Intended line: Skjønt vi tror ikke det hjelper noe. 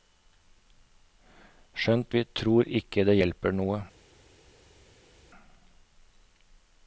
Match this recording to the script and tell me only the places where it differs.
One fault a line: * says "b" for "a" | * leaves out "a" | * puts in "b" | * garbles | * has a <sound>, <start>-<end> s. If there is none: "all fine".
all fine